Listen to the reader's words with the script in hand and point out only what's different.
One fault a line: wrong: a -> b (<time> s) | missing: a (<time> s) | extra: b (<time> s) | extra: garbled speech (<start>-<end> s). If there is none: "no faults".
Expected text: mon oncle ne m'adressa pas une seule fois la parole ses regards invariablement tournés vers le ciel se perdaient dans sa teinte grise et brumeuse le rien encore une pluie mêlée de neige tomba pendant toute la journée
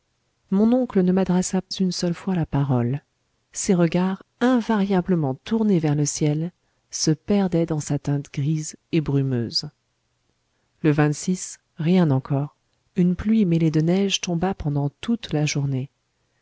missing: pas (1.6 s)